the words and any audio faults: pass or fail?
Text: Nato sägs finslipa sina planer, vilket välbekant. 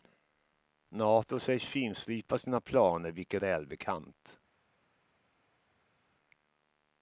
pass